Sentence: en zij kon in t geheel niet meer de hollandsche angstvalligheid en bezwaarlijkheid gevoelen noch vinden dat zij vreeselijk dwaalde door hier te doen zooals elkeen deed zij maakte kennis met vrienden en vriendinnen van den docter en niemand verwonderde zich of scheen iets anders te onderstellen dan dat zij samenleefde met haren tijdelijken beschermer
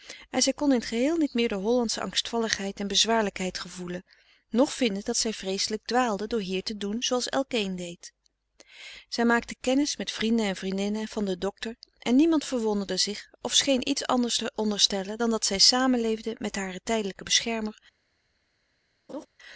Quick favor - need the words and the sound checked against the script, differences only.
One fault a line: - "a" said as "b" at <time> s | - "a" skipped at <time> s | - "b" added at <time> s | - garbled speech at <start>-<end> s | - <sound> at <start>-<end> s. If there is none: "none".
- laugh at 19.1-19.3 s